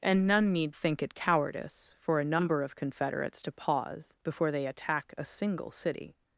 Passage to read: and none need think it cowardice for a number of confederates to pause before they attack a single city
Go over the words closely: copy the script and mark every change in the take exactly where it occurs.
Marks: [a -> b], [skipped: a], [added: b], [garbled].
and none need think it cowardice for a number of confederates to pause before they attack a single city